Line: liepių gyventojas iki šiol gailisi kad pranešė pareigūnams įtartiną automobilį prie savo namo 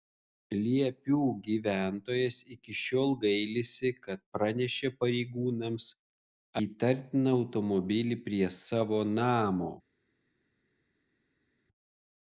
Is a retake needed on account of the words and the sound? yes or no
no